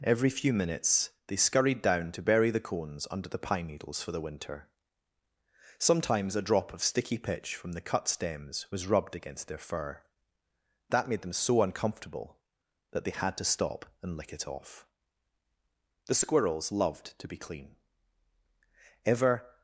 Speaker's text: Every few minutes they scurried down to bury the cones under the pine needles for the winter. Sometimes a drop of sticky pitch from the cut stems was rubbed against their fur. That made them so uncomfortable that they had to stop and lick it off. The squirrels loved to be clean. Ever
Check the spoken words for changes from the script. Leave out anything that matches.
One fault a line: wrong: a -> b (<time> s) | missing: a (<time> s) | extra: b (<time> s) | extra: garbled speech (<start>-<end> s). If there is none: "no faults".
no faults